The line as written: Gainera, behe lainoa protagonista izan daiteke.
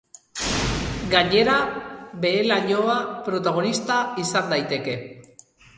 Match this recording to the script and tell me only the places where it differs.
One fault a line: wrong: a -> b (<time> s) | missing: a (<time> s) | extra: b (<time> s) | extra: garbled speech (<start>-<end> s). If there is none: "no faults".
no faults